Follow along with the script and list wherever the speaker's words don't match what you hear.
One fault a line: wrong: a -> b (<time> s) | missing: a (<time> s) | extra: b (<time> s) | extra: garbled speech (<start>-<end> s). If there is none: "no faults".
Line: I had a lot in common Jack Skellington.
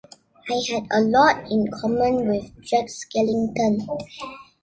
extra: with (2.3 s)